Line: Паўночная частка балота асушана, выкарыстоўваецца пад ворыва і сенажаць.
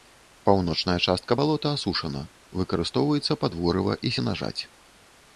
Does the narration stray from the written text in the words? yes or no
no